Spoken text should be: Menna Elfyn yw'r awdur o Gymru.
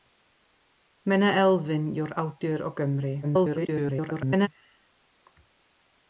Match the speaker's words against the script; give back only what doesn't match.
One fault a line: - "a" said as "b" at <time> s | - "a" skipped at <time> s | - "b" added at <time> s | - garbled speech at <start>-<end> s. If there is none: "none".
- garbled speech at 3.2-4.5 s